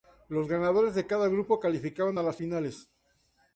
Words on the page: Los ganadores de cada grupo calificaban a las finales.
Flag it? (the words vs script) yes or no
no